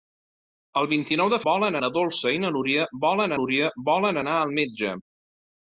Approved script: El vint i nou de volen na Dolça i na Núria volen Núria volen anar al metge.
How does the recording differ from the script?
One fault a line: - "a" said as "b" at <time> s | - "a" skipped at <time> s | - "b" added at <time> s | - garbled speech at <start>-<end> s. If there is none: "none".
none